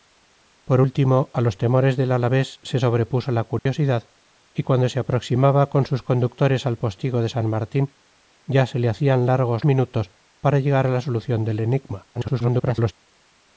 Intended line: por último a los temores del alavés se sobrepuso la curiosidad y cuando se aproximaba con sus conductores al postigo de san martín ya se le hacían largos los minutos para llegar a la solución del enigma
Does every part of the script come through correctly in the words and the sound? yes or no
no